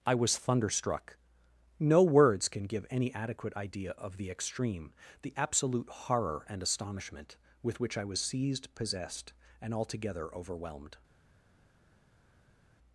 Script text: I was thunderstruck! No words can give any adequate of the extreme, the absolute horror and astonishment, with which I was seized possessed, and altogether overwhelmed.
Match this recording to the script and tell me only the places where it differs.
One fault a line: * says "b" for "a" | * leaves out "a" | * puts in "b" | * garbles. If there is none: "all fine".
* puts in "idea"